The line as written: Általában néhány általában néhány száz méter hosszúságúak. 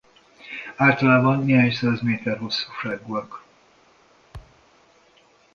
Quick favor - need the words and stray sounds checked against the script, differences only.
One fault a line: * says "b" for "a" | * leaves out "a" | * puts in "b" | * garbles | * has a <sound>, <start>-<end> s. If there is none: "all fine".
* leaves out "általában néhány"
* has a thud, 4.3-4.6 s